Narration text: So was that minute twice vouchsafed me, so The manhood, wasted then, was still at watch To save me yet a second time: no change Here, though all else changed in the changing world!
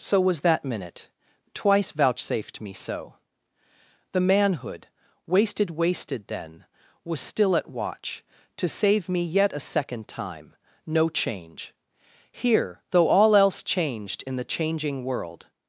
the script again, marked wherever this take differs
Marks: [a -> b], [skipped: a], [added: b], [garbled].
So was that minute twice vouchsafed me, so The manhood, wasted [added: wasted] then, was still at watch To save me yet a second time: no change Here, though all else changed in the changing world!